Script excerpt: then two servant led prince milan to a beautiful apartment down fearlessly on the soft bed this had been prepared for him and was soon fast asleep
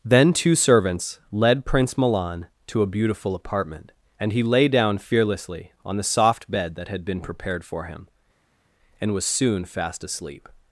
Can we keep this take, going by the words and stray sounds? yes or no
no